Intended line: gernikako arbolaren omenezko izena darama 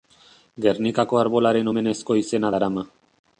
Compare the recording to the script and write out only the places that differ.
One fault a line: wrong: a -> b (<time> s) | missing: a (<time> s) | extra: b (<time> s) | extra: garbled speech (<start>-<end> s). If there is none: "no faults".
no faults